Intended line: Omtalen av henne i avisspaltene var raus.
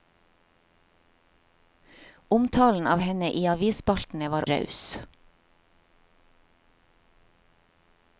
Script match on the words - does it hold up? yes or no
yes